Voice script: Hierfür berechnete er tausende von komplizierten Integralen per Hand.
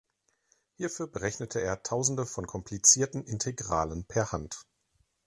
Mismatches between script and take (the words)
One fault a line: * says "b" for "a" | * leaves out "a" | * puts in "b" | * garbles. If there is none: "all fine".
all fine